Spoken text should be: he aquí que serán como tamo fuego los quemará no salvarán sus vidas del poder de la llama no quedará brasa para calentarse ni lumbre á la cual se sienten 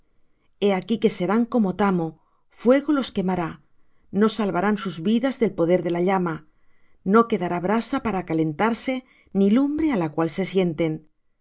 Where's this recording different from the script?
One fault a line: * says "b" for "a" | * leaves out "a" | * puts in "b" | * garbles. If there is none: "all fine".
all fine